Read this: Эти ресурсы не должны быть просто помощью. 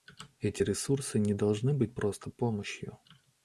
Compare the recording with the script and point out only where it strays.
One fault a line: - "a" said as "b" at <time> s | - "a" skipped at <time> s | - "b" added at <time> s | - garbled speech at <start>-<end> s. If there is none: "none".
none